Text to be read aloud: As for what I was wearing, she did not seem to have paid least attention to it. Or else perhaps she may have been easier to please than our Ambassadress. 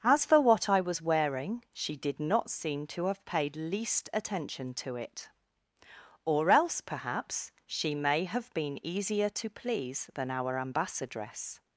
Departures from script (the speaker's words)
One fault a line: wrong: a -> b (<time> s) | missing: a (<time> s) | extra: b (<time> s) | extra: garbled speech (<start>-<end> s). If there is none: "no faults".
no faults